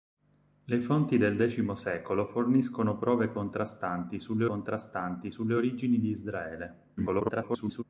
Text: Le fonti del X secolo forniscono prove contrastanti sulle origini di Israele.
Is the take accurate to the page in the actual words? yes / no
no